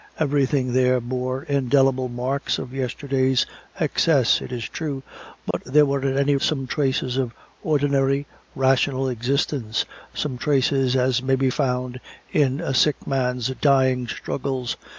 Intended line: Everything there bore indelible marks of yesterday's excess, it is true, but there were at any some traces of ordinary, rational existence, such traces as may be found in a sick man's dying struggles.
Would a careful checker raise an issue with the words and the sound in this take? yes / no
yes